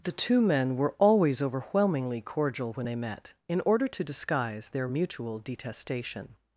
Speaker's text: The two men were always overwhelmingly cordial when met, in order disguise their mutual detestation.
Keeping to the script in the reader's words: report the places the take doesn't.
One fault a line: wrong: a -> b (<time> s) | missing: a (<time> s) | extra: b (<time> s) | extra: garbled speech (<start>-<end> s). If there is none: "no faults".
extra: they (2.8 s)
extra: to (3.9 s)